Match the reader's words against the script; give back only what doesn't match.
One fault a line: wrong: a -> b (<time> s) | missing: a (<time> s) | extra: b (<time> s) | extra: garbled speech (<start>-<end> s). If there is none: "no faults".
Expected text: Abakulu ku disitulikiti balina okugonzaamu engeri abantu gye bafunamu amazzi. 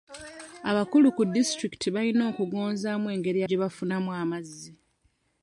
missing: abantu (3.4 s)